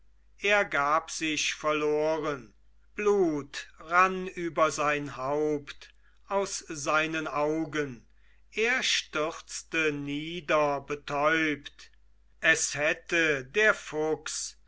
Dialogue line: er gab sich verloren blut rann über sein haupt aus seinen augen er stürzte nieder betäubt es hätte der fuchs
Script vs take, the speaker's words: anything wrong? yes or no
no